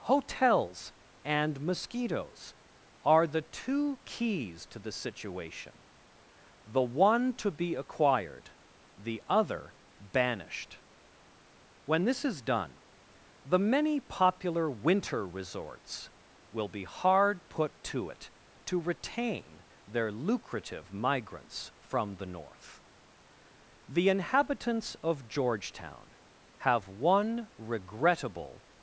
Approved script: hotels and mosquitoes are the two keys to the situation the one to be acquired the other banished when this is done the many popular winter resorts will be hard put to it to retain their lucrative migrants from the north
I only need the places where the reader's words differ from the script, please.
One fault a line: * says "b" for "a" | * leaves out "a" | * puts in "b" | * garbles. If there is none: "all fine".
* puts in "the inhabitants of georgetown have one regrettable"